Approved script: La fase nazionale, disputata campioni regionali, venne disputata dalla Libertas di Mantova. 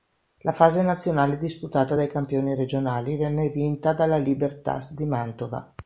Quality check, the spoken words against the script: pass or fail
fail